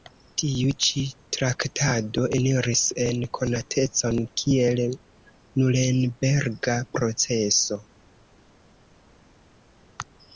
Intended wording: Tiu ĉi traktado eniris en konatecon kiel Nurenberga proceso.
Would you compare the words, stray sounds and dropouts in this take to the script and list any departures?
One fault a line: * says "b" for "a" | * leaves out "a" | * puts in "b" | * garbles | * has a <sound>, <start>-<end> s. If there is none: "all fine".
all fine